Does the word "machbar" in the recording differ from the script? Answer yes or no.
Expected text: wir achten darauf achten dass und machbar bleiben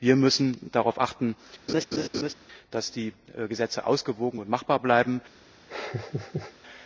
no